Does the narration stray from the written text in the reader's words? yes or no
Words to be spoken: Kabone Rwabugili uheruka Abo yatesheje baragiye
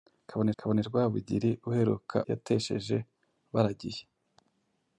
yes